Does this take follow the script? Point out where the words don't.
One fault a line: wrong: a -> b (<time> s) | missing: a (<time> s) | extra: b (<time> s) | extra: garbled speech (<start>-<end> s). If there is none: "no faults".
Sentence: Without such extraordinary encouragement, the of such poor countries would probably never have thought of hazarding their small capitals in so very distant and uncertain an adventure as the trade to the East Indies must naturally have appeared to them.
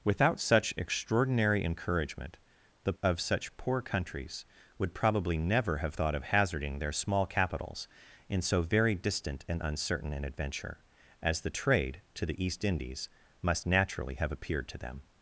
no faults